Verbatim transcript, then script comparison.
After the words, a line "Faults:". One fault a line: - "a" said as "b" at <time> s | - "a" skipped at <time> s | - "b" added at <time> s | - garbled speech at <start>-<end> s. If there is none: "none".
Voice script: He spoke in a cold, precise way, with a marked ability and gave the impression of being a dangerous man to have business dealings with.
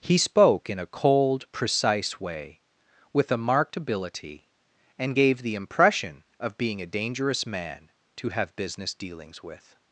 He spoke in a cold, precise way, with a marked ability and gave the impression of being a dangerous man to have business dealings with.
Faults:
none